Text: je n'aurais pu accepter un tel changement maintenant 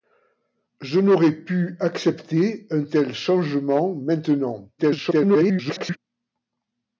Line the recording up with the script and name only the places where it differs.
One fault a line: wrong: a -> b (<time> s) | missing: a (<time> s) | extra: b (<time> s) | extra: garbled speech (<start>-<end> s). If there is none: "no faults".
extra: garbled speech (4.8-6.0 s)